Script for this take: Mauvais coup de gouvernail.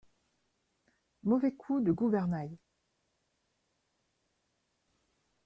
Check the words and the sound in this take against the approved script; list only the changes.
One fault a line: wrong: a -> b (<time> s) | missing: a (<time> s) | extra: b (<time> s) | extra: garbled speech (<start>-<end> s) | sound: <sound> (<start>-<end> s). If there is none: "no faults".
no faults